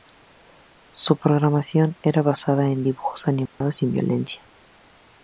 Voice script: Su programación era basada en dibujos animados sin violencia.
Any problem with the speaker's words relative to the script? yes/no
no